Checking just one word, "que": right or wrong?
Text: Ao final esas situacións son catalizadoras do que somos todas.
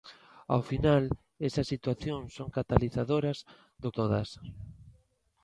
wrong